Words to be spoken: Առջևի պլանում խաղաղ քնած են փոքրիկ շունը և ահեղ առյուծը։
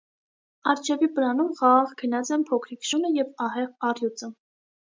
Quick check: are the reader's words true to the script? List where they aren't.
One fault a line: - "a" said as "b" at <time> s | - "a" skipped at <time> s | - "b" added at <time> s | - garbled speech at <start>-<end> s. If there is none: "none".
none